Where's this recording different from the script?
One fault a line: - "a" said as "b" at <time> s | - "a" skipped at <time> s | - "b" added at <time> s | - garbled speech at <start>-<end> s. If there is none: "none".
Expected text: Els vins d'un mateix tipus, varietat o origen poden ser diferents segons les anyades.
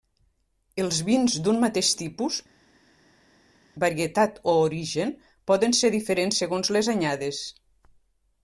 none